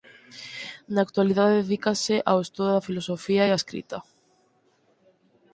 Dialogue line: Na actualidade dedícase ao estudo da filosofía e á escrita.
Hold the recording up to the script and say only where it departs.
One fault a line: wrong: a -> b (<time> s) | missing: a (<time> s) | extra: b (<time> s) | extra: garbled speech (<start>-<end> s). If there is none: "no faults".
no faults